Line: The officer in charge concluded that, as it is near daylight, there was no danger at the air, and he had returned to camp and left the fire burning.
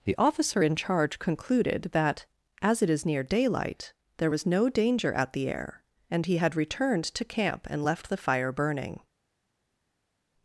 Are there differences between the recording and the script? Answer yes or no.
no